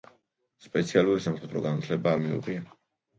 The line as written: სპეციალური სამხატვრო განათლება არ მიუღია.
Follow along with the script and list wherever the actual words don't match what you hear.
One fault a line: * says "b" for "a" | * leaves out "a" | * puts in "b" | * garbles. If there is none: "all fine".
all fine